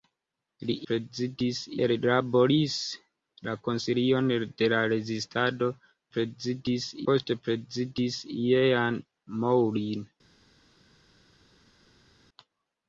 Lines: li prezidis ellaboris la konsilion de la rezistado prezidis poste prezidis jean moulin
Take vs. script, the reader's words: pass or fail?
pass